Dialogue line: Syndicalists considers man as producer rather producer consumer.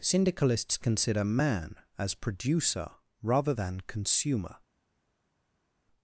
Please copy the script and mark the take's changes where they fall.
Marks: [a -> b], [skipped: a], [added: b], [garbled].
Syndicalists [considers -> consider] man as producer rather [producer -> than] consumer.